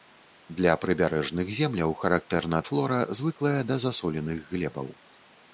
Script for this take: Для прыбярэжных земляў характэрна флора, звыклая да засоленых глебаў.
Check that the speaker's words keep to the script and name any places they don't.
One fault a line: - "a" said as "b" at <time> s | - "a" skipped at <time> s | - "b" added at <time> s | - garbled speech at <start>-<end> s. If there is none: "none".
none